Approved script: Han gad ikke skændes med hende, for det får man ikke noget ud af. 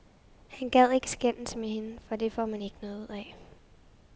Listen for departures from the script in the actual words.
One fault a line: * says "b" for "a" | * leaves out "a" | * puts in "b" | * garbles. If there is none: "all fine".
all fine